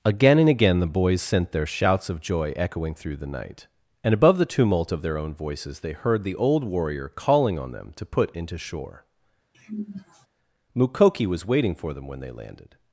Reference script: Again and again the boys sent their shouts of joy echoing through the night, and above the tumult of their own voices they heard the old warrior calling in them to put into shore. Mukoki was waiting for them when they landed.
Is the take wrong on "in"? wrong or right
wrong